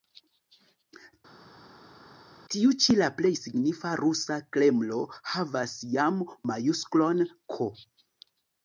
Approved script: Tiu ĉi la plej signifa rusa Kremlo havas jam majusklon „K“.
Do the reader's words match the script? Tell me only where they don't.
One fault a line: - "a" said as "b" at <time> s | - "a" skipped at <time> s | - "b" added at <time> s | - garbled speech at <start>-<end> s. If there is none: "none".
none